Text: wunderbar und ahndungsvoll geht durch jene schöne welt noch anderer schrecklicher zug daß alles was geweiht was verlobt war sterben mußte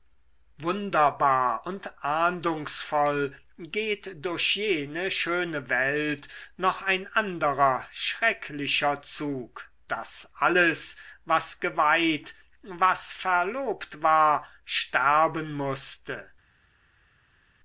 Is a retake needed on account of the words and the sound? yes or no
yes